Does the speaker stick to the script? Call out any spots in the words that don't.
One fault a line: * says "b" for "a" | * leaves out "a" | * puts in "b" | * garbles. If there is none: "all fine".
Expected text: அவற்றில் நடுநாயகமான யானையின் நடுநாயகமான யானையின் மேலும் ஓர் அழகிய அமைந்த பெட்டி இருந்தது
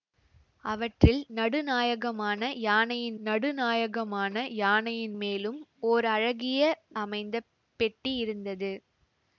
all fine